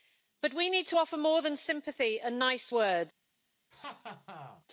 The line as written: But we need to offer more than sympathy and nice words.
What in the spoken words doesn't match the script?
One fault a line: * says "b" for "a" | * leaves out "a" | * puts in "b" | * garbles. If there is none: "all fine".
all fine